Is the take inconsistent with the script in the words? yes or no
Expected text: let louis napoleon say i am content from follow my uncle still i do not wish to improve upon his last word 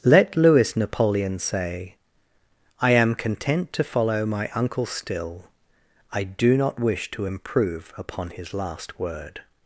yes